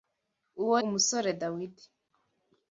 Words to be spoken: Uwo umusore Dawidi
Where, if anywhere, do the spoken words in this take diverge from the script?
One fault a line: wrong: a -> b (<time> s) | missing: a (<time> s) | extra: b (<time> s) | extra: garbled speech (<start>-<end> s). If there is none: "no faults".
no faults